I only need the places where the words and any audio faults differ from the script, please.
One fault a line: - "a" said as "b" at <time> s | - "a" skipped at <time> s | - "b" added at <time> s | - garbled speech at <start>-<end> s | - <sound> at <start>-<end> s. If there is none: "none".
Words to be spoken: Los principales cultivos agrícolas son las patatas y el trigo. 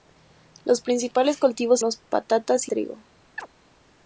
- "agrícolas son" skipped at 1.9 s
- "el" skipped at 2.7 s
- chirp at 3.4-3.5 s